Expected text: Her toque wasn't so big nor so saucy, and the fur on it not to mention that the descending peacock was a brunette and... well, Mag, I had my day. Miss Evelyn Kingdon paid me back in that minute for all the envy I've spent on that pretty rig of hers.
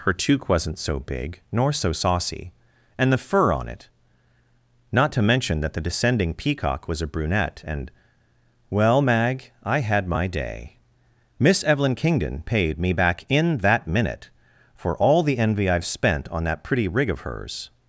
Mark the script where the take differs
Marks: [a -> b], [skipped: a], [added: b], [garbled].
Her toque wasn't so big nor so saucy, and the fur on it not to mention that the descending peacock was a brunette and... well, Mag, I had my day. Miss Evelyn Kingdon paid me back in that minute for all the envy I've spent on that pretty rig of hers.